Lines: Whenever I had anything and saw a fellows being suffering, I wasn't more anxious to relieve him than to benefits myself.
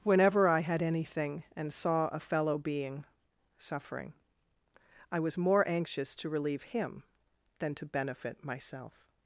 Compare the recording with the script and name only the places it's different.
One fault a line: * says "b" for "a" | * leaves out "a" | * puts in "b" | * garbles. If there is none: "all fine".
* says "fellow" for "fellows"
* says "was" for "wasn't"
* says "benefit" for "benefits"